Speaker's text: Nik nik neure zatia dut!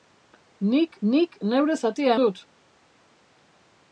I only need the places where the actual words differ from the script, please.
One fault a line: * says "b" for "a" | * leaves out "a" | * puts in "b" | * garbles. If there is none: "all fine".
all fine